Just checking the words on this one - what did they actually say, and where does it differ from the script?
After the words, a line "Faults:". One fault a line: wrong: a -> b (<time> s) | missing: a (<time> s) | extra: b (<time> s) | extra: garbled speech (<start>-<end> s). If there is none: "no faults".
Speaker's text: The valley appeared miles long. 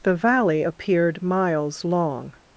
The valley appeared miles long.
Faults:
no faults